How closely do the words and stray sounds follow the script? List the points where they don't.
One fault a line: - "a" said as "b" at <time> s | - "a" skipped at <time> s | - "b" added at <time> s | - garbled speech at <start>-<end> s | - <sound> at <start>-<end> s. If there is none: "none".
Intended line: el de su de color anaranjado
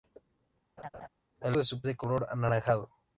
- laugh at 0.8-1.1 s